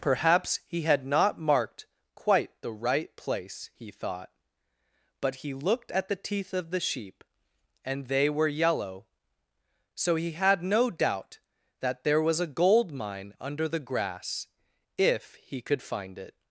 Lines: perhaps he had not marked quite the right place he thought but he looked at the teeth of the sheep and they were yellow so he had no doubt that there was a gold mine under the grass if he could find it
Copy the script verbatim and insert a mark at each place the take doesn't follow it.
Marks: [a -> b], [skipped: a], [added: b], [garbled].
perhaps he had not marked quite the right place he thought but he looked at the teeth of the sheep and they were yellow so he had no doubt that there was a gold mine under the grass if he could find it